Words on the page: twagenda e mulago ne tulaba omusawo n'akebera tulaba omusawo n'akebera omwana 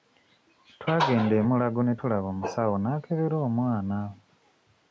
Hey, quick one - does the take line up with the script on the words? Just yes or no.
no